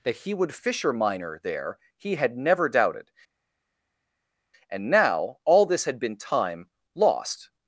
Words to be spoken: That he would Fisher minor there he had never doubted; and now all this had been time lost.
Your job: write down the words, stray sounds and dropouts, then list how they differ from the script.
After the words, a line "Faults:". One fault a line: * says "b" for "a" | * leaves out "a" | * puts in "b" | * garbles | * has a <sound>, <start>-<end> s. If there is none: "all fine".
That he would Fisher minor there he had never doubted; and now all this had been time lost.
Faults:
all fine